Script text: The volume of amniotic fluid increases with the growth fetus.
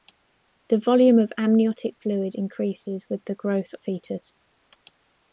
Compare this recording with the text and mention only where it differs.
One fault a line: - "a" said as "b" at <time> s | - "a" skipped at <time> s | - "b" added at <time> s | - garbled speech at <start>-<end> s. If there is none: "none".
none